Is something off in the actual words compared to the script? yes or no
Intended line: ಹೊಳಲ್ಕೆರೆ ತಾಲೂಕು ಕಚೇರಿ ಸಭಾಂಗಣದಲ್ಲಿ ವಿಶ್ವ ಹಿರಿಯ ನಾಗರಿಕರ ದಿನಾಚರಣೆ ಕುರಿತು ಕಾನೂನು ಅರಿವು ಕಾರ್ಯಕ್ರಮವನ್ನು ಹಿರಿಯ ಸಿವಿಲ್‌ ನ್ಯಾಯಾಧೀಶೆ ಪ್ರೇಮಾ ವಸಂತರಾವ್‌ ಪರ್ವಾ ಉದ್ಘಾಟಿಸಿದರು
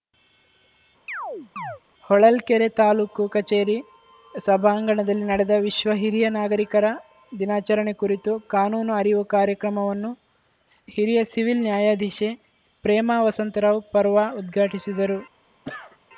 yes